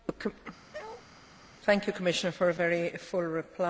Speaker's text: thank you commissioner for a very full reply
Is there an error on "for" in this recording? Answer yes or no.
no